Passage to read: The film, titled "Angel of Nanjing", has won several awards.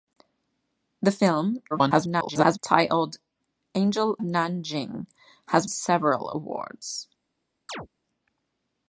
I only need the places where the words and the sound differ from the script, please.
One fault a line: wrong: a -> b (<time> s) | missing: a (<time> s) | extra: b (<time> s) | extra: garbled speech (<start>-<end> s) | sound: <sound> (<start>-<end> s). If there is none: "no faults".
extra: garbled speech (1.7-2.6 s)
missing: of (4.2 s)
missing: won (5.7 s)
sound: chirp (7.7-7.9 s)